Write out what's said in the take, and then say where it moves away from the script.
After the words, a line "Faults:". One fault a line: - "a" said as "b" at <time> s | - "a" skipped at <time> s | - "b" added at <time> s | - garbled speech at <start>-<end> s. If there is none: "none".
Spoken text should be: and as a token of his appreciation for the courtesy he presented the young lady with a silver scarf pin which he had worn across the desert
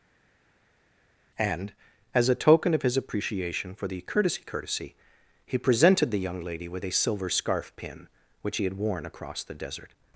and as a token of his appreciation for the courtesy courtesy he presented the young lady with a silver scarf pin which he had worn across the desert
Faults:
- "courtesy" added at 4.4 s